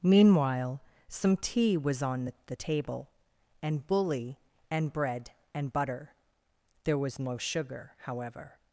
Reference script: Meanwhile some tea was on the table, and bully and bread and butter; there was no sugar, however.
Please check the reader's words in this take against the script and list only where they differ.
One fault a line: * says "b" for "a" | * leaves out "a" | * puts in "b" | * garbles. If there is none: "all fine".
* puts in "the"